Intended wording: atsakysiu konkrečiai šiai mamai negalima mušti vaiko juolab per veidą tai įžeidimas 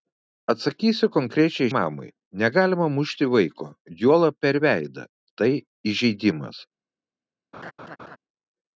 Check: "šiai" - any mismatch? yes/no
yes